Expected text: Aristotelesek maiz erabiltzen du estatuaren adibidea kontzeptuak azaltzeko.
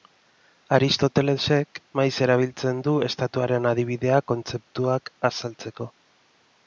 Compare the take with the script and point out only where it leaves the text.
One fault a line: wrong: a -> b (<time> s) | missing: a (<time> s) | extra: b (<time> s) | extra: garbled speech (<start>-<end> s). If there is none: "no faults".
no faults